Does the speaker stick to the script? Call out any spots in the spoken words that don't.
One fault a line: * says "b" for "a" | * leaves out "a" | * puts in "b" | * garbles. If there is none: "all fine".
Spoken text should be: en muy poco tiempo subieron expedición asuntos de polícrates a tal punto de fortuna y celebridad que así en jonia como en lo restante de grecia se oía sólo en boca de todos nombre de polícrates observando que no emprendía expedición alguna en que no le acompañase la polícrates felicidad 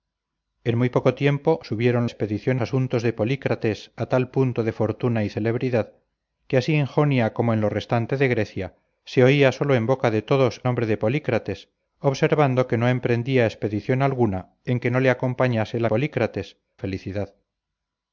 all fine